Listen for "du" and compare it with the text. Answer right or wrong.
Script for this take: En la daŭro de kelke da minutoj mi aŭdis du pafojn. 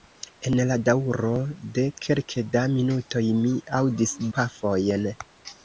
wrong